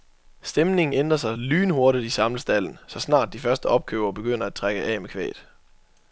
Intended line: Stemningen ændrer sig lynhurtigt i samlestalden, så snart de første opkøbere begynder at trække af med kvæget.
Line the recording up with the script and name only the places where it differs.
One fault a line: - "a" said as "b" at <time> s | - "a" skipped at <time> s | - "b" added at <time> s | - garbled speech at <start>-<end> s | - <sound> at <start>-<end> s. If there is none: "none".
none